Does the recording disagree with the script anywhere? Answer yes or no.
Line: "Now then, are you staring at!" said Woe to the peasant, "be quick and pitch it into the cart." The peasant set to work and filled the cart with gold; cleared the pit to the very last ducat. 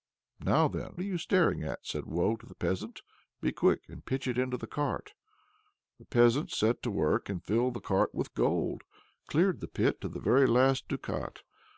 no